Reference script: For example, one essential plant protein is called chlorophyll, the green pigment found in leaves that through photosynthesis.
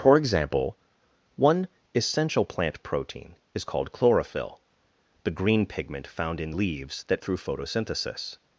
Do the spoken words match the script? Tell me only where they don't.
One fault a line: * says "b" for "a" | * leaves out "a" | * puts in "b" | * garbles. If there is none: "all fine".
all fine